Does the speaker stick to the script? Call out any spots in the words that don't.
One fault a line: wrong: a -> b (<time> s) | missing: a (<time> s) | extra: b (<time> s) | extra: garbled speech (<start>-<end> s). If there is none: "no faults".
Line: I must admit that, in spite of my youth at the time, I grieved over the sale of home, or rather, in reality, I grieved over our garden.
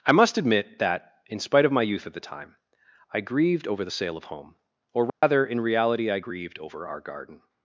no faults